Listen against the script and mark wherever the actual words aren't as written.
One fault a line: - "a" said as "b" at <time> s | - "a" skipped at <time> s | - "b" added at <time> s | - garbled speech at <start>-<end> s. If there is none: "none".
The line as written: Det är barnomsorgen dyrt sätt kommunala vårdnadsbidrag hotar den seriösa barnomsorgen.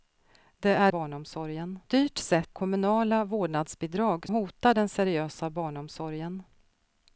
none